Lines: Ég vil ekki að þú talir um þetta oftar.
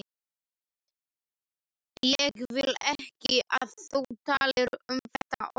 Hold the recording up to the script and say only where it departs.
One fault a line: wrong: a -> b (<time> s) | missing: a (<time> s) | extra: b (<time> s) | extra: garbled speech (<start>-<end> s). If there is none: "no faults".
no faults